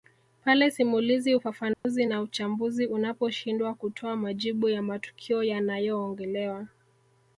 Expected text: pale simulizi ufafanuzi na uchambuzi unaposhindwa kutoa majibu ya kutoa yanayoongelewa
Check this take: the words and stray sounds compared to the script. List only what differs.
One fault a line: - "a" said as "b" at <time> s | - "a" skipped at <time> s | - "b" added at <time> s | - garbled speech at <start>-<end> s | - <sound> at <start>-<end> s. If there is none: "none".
- dropout at 1.7-1.8 s
- "kutoa" said as "matukio" at 4.8 s